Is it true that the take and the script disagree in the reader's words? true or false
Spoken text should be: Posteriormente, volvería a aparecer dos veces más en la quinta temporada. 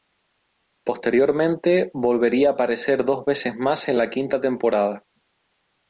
false